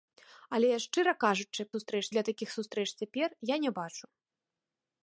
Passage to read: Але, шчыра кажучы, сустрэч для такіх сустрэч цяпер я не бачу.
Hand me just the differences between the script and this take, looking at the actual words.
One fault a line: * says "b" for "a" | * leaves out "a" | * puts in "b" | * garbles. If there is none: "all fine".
all fine